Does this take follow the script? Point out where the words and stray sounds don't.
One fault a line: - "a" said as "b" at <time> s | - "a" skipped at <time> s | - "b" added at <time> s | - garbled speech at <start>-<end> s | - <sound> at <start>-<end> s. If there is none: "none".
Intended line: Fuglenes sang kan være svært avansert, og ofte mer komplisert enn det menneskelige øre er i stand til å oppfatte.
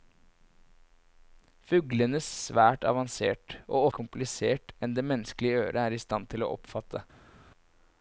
- "sang kan være" skipped at 2.2 s
- "ofte mer" skipped at 3.9 s